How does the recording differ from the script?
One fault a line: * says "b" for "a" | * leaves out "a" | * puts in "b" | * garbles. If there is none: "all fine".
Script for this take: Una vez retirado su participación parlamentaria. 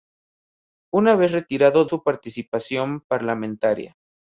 all fine